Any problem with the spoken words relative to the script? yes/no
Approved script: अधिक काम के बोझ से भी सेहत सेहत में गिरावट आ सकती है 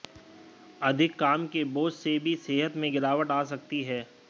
yes